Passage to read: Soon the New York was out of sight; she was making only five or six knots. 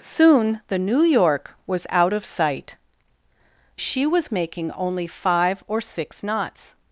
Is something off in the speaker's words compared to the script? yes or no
no